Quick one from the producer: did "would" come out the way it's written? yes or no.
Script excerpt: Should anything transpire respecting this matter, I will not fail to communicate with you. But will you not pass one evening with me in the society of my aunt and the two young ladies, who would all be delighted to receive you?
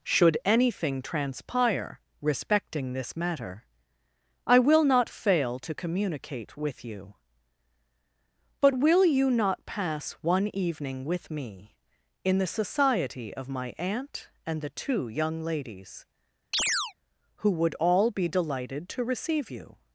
yes